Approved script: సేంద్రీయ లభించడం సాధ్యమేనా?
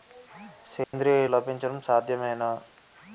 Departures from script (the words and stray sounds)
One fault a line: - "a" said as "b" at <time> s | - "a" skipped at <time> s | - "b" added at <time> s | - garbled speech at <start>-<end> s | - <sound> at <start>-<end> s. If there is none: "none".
- dropout at 0.8-0.9 s